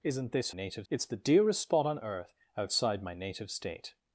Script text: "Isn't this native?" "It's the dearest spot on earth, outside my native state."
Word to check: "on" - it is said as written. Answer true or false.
true